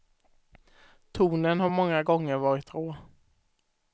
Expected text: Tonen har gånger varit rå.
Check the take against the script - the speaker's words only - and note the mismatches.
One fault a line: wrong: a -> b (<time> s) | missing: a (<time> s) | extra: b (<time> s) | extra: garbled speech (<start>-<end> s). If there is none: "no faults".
extra: många (1.7 s)